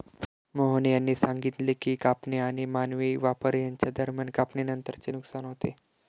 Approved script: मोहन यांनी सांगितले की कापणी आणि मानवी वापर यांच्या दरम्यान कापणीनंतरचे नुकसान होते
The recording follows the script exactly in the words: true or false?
true